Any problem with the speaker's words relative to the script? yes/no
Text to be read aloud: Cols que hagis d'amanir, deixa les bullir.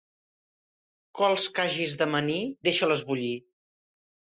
no